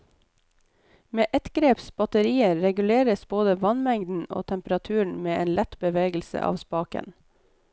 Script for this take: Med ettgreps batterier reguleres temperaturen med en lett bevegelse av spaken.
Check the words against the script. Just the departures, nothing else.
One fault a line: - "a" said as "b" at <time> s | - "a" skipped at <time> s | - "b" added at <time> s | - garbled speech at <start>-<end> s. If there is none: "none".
- "både vannmengden og" added at 3.3 s